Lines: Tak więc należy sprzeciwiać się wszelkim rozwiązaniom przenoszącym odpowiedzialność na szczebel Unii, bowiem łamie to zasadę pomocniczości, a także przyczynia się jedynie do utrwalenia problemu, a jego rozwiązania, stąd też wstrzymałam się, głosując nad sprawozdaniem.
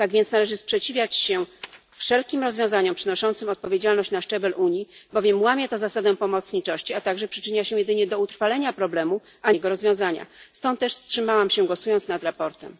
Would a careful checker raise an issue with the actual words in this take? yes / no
no